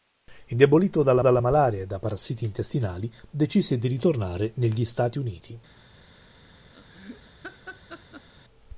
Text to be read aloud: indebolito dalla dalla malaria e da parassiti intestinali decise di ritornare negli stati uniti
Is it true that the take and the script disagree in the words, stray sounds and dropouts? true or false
true